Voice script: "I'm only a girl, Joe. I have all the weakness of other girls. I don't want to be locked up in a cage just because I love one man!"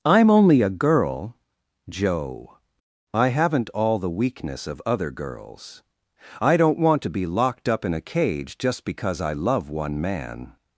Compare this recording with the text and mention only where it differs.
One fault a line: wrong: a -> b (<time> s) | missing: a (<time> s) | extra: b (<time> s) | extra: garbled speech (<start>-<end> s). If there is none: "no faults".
wrong: have -> haven't (3.3 s)